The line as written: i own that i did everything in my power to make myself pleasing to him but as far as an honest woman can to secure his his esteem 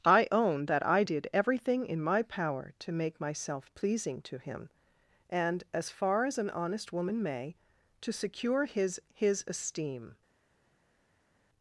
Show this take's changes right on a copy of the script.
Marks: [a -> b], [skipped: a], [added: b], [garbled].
i own that i did everything in my power to make myself pleasing to him [but -> and] as far as an honest woman [can -> may] to secure his his esteem